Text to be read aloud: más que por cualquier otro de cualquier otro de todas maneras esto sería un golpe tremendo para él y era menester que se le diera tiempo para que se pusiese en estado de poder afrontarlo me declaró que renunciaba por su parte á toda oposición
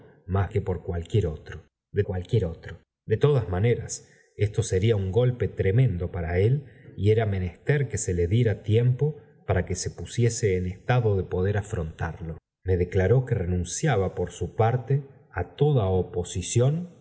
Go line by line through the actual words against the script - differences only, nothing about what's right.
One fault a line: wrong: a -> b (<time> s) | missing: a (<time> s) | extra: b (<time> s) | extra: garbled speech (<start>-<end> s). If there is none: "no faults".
no faults